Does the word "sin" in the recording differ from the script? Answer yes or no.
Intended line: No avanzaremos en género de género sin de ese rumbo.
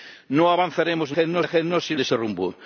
no